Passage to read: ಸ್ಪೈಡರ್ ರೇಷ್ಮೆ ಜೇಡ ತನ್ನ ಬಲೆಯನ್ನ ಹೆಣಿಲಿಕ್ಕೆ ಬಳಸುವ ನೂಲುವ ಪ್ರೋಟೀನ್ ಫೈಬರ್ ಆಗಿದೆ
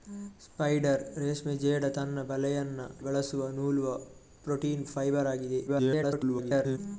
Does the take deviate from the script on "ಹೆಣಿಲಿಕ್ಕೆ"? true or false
true